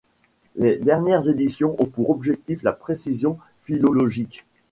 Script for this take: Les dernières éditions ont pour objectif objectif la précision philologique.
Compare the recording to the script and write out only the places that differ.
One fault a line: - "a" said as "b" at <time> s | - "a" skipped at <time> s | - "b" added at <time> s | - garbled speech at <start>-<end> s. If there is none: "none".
- "objectif" skipped at 2.6 s